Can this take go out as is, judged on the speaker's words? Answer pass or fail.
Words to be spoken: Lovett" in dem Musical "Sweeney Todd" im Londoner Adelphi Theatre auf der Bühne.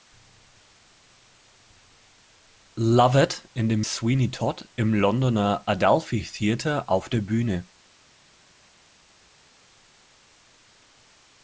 fail